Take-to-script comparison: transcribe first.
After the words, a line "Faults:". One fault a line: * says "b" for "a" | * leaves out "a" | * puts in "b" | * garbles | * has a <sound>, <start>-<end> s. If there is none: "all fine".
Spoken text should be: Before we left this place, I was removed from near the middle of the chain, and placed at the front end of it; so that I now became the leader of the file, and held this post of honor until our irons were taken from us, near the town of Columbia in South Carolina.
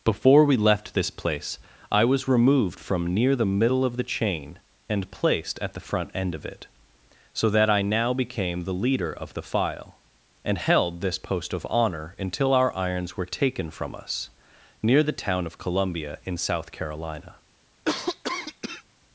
Before we left this place, I was removed from near the middle of the chain, and placed at the front end of it; so that I now became the leader of the file, and held this post of honor until our irons were taken from us, near the town of Columbia in South Carolina.
Faults:
* has a cough, 17.8-18.8 s